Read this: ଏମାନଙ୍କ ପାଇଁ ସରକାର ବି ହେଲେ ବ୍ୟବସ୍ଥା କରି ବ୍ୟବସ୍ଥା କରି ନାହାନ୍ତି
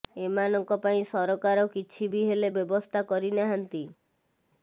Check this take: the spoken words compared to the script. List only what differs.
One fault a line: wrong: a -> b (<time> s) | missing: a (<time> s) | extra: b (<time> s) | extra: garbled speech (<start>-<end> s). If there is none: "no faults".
extra: କିଛି (1.7 s)
missing: ବ୍ୟବସ୍ଥା କରି (3.4 s)